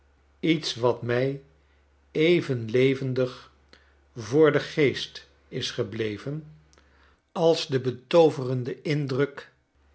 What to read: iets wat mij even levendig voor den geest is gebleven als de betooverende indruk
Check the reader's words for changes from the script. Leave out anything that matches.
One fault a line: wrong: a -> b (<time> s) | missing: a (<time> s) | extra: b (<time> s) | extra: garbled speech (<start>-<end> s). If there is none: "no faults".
no faults